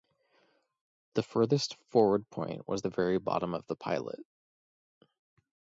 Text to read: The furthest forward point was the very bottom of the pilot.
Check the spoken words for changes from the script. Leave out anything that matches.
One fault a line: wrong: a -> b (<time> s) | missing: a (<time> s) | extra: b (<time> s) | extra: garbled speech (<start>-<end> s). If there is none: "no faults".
no faults